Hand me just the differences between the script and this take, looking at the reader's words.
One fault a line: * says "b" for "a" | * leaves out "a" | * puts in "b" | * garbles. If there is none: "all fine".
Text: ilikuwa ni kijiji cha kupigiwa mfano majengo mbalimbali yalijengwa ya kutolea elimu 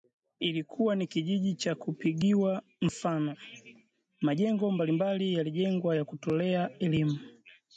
all fine